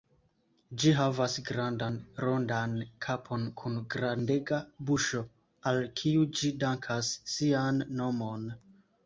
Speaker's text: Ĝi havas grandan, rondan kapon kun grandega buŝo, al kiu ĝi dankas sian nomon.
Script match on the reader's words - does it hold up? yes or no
yes